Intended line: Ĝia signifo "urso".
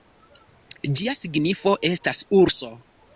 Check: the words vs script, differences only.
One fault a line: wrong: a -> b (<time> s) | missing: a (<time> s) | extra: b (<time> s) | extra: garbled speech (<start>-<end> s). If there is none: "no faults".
extra: estas (1.9 s)